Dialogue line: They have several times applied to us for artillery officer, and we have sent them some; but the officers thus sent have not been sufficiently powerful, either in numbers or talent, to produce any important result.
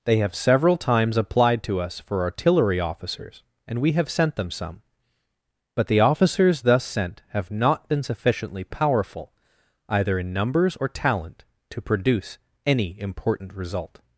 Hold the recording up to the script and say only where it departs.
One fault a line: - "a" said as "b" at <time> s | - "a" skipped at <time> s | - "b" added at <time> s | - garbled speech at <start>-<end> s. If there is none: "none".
- "officer" said as "officers" at 2.8 s